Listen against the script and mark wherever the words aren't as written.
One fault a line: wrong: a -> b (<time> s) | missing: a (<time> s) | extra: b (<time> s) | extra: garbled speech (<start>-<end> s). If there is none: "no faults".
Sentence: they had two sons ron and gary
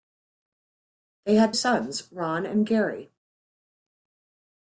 missing: two (1.5 s)